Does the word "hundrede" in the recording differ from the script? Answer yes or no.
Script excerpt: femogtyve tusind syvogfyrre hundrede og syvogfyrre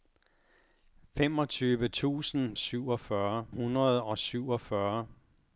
no